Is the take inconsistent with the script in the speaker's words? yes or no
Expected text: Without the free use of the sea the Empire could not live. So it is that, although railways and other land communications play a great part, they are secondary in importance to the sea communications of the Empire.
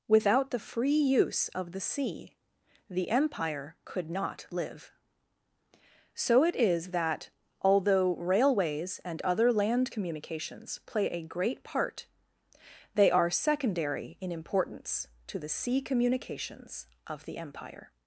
no